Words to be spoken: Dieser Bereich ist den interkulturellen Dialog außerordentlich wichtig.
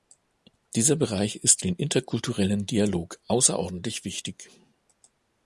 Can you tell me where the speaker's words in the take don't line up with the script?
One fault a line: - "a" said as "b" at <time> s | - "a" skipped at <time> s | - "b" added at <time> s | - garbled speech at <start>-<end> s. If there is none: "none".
none